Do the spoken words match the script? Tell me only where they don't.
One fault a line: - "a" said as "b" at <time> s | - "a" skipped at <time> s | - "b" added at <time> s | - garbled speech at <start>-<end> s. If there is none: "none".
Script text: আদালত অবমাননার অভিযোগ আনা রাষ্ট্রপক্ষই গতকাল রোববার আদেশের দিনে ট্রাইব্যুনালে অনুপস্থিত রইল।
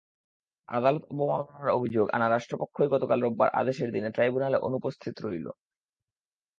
none